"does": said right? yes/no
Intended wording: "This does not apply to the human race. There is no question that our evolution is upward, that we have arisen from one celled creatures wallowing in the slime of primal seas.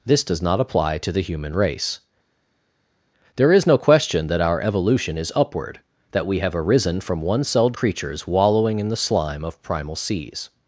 yes